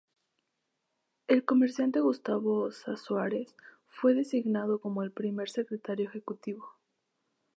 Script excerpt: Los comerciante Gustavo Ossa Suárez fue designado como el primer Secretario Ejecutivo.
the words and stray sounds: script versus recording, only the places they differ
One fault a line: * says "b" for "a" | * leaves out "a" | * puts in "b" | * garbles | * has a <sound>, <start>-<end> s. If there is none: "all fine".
* says "El" for "Los"